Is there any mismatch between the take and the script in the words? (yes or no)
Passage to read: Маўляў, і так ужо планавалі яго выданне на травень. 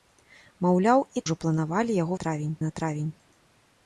yes